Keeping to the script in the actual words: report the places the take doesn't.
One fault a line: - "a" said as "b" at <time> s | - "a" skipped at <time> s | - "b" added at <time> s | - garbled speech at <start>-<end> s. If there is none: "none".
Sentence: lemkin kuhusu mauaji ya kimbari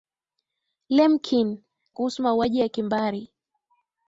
none